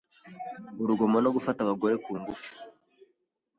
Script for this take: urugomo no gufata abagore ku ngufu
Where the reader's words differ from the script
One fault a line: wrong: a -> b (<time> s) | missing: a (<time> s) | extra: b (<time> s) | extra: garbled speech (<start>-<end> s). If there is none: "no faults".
no faults